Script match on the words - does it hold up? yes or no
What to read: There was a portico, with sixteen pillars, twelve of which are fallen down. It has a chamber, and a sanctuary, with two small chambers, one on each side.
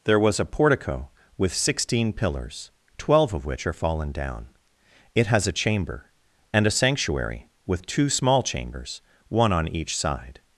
yes